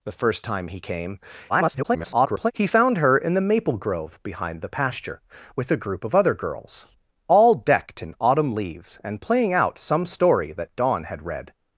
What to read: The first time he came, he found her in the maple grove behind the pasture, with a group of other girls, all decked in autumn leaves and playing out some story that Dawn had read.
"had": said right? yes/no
yes